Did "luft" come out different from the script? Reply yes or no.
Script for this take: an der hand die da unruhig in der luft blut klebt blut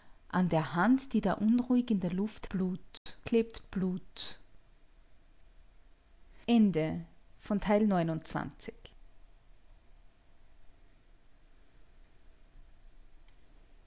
no